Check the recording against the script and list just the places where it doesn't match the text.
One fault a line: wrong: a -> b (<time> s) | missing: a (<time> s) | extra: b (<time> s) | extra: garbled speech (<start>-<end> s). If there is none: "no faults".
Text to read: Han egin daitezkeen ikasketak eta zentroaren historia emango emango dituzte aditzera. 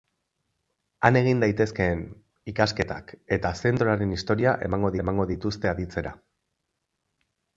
no faults